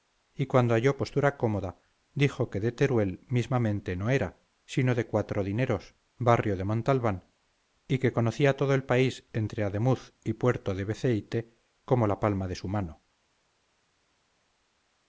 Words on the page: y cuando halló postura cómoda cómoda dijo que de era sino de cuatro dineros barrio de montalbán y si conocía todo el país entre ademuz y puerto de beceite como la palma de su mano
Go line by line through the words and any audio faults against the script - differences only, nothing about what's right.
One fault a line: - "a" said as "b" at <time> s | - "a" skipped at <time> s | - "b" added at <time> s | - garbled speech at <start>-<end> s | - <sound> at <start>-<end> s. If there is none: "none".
- "cómoda" skipped at 1.8 s
- "teruel mismamente no" added at 2.7 s
- "si" said as "que" at 8.0 s